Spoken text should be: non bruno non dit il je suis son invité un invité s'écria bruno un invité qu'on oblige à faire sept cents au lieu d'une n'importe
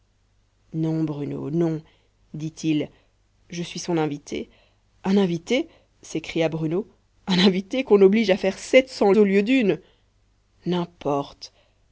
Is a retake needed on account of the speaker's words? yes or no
no